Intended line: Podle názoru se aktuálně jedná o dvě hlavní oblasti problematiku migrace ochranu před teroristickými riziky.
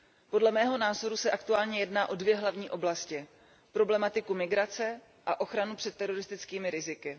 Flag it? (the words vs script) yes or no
yes